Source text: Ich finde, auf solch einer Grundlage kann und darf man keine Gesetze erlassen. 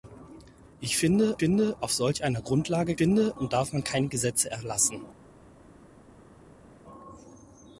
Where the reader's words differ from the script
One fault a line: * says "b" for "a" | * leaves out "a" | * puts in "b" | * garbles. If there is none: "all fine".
* puts in "finde"
* says "finde" for "kann"